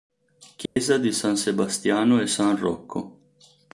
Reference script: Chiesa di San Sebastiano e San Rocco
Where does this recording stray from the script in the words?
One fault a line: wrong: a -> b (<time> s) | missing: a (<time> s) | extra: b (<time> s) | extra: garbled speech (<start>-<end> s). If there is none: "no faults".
no faults